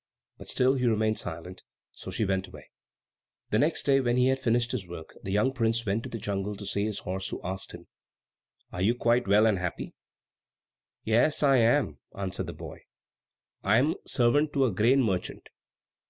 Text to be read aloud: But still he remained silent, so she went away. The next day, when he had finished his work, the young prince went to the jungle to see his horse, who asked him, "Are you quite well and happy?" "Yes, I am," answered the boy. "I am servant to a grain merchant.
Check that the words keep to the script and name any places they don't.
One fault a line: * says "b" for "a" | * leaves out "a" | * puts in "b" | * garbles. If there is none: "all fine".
all fine